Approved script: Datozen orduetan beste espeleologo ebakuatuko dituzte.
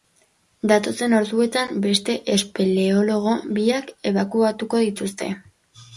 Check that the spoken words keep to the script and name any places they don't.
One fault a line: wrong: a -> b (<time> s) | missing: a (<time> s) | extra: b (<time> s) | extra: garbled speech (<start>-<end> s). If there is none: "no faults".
extra: biak (3.6 s)